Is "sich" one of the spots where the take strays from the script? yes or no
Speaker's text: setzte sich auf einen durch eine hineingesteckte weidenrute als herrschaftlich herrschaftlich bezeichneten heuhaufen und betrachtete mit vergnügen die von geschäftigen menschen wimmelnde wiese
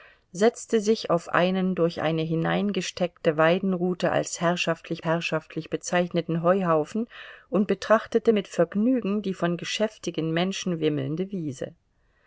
no